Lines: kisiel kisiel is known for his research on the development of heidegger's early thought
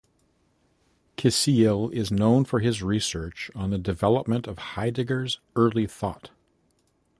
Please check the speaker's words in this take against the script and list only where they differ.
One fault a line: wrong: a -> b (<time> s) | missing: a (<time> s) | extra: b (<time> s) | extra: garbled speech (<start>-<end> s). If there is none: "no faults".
missing: kisiel (1.9 s)